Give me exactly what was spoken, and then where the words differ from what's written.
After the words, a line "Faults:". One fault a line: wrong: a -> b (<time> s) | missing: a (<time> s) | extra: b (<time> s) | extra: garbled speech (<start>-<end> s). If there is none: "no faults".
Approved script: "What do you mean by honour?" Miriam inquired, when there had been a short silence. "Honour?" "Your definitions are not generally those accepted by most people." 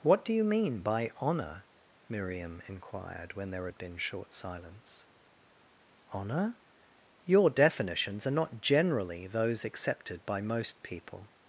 "What do you mean by honour?" Miriam inquired, when there had been short silence. "Honour?" "Your definitions are not generally those accepted by most people."
Faults:
missing: a (4.0 s)